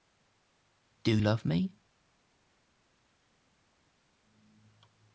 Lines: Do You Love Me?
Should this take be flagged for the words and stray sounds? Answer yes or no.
yes